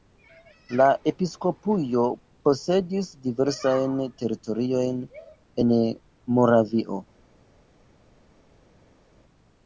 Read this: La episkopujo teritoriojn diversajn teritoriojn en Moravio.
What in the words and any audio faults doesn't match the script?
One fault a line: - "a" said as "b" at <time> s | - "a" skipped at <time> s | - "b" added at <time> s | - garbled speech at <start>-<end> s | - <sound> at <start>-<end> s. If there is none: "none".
- "teritoriojn" said as "posedis" at 2.5 s